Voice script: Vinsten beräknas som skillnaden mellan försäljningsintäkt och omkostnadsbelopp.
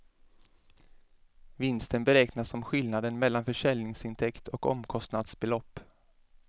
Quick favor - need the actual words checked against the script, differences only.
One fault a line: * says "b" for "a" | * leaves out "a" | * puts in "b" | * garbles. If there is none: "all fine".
all fine